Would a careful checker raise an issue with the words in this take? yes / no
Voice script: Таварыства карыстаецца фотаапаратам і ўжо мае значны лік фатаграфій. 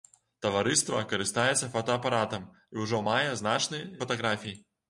yes